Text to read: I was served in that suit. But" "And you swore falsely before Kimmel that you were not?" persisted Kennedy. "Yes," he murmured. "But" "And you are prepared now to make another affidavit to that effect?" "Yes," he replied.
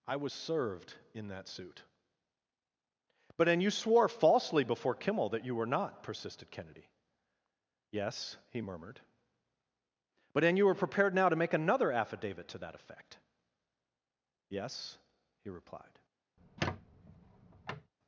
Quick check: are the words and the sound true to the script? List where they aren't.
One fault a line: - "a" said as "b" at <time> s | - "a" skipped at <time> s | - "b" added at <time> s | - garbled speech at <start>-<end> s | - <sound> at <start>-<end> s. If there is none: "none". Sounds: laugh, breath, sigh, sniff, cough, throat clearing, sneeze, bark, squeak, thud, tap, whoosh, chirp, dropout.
- "are" said as "were" at 10.7 s
- squeak at 16.4-17.9 s